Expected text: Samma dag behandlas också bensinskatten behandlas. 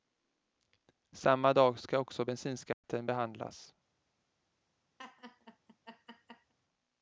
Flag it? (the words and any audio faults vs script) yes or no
yes